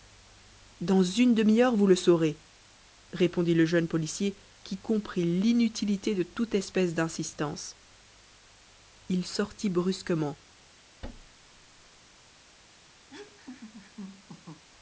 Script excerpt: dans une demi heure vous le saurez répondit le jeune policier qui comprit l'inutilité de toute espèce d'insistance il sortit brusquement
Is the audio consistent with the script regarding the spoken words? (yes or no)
yes